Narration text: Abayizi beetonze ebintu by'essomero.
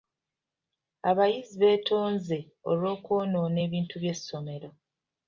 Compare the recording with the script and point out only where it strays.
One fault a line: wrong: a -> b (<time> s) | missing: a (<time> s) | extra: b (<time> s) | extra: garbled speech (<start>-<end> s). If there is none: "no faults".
extra: olw'okwonoona (2.7 s)